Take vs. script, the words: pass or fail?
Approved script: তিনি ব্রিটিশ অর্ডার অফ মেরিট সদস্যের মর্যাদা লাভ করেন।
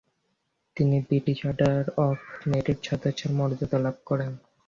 pass